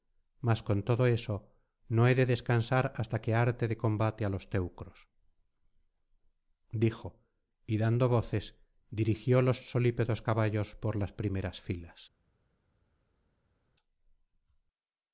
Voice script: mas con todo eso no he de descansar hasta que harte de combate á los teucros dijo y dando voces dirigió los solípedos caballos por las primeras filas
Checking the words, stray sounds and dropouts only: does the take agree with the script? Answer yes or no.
yes